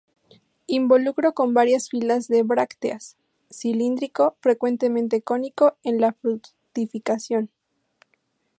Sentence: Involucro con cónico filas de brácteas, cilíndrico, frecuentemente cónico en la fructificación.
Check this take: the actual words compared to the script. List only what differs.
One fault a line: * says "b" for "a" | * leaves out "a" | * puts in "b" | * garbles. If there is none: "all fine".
* says "varias" for "cónico"